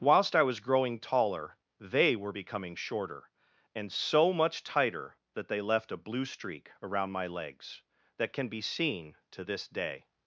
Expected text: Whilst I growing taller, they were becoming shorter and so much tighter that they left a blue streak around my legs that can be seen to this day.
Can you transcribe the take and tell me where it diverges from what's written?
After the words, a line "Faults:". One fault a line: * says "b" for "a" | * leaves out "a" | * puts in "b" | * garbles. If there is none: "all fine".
Whilst I was growing taller, they were becoming shorter and so much tighter that they left a blue streak around my legs that can be seen to this day.
Faults:
* puts in "was"